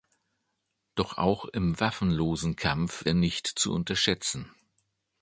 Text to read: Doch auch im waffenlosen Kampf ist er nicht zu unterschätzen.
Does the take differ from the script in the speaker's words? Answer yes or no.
yes